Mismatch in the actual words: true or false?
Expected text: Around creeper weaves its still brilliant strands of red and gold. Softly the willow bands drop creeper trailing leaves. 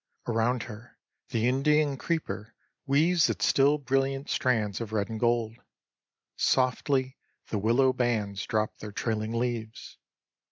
true